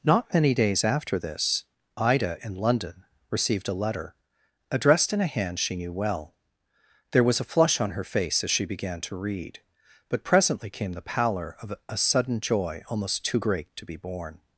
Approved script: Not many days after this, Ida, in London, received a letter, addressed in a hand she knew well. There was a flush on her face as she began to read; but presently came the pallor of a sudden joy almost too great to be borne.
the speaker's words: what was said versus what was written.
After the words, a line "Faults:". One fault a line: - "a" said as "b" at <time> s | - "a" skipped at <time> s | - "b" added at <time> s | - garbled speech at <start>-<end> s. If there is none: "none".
Not many days after this, Ida, in London, received a letter, addressed in a hand she knew well. There was a flush on her face as she began to read; but presently came the pallor of a sudden joy almost too great to be borne.
Faults:
none